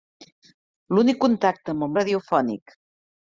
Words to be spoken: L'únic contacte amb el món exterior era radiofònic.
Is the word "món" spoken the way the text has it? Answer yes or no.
no